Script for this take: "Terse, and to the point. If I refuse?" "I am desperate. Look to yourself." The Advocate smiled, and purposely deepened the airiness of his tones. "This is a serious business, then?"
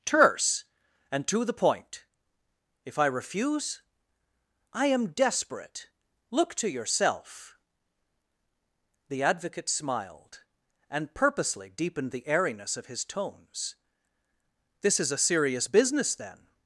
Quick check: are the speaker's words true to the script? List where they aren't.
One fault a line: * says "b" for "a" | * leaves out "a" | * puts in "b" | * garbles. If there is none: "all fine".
all fine